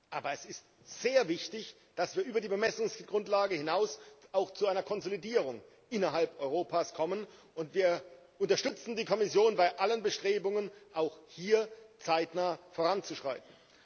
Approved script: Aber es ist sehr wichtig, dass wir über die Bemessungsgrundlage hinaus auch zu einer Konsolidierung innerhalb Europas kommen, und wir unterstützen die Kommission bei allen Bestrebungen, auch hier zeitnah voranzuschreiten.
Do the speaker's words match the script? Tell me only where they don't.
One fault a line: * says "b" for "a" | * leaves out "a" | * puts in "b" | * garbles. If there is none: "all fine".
all fine